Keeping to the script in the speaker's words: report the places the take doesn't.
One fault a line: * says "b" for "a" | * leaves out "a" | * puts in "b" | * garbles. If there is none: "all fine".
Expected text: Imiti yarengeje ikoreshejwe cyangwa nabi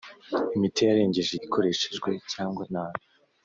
all fine